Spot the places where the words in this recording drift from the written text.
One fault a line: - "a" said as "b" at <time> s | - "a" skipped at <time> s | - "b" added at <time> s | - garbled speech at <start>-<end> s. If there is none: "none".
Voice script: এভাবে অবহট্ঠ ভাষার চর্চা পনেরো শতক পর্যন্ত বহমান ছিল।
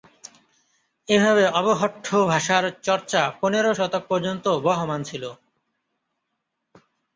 none